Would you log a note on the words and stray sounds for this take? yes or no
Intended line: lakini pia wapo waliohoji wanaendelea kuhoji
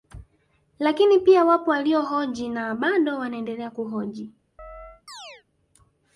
yes